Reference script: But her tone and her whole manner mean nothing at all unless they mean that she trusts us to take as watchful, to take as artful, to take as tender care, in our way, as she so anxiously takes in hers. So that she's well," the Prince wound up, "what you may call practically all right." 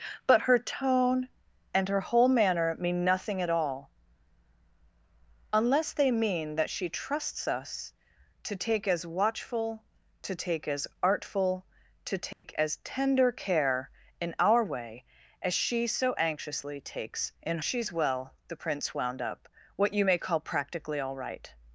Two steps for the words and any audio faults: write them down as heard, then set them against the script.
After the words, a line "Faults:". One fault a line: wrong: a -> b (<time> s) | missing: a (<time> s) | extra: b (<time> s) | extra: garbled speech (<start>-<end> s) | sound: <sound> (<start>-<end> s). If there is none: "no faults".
But her tone and her whole manner mean nothing at all unless they mean that she trusts us to take as watchful, to take as artful, to take as tender care, in our way, as she so anxiously takes in she's well," the Prince wound up, "what you may call practically all right."
Faults:
sound: dropout (12.3-12.4 s)
missing: hers So that (17.6 s)